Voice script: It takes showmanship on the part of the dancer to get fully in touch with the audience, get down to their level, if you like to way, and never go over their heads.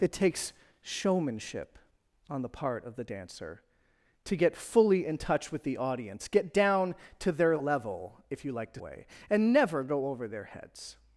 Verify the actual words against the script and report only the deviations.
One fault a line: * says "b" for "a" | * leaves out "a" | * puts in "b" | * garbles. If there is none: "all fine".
all fine